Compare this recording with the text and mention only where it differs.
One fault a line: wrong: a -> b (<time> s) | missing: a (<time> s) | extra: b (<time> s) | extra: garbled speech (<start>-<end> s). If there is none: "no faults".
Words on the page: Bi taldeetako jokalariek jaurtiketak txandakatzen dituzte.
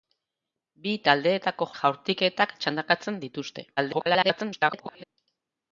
missing: jokalariek (1.7 s)
extra: garbled speech (3.8-5.0 s)